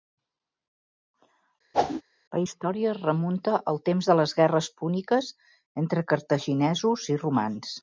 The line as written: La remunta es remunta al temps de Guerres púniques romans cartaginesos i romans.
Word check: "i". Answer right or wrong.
right